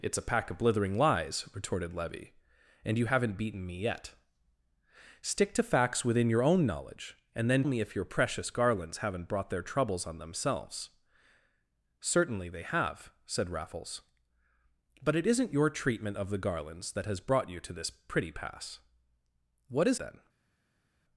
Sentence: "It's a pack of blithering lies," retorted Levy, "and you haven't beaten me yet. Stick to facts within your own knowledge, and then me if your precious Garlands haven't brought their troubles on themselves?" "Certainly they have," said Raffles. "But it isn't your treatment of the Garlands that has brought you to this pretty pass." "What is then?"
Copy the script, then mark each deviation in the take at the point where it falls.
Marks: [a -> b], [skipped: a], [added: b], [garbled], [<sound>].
"It's a pack of blithering lies," retorted Levy, "and you haven't beaten me yet. Stick to facts within your own knowledge, and then me if your precious Garlands haven't brought their troubles on themselves?" "Certainly they have," said Raffles. "But it isn't your treatment of the Garlands that has brought you to this pretty pass." "What is then?"